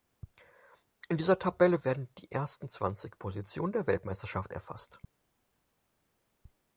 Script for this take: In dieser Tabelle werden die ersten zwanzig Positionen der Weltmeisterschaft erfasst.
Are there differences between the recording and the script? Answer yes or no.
no